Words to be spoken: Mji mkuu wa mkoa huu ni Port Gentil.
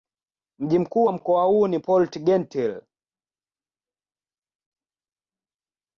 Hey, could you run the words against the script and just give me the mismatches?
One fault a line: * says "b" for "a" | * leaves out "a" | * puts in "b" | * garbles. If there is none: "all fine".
all fine